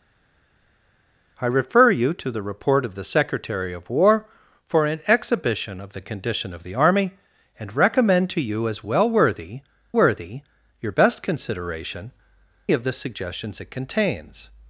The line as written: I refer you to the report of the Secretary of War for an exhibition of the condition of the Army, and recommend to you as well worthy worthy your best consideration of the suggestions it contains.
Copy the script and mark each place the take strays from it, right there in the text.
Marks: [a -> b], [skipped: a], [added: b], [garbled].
I refer you to the report of the Secretary of War for an exhibition of the condition of the Army, and recommend to you as well worthy worthy your best consideration of the suggestions it contains.